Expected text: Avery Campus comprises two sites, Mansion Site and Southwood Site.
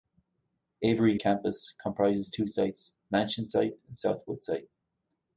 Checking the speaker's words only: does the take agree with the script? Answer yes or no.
yes